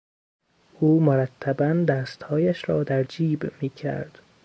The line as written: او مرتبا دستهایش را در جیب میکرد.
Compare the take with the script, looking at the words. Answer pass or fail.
pass